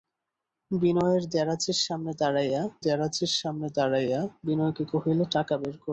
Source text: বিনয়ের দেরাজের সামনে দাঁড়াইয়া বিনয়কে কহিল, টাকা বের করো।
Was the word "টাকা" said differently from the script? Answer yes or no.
no